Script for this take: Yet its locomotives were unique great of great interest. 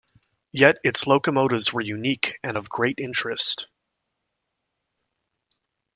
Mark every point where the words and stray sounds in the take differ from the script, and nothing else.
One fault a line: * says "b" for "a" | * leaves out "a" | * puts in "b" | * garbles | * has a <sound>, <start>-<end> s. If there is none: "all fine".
* says "and" for "great"